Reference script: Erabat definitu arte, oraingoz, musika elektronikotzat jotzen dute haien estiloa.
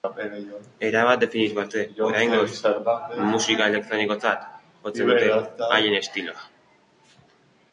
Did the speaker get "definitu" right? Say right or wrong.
right